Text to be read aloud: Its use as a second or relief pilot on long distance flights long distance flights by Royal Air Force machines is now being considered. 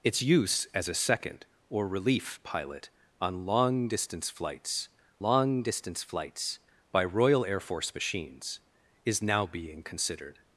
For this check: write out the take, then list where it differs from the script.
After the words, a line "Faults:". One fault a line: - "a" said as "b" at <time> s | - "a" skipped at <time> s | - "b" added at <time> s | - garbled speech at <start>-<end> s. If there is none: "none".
Its use as a second or relief pilot on long distance flights long distance flights by Royal Air Force machines is now being considered.
Faults:
none